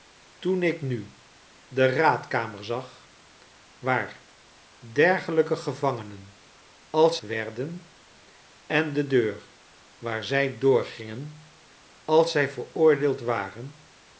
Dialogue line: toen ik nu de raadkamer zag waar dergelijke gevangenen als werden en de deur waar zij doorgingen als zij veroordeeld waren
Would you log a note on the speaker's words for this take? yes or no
no